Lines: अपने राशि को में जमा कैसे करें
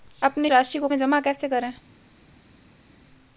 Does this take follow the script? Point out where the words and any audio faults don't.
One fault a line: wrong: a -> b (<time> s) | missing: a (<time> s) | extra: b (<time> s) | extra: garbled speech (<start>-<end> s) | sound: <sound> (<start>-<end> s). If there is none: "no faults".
no faults